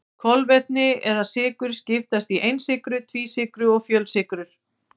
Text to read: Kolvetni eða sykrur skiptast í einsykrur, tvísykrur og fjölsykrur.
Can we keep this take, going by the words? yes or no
yes